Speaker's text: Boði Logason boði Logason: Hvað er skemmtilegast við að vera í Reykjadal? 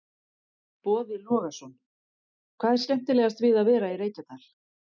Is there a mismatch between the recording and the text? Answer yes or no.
yes